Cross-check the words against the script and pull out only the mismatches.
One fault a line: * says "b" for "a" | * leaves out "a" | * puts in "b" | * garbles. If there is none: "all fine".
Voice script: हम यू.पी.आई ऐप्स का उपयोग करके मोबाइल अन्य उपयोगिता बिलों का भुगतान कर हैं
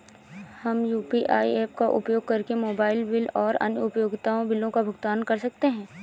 * puts in "बिल और"
* puts in "सकते"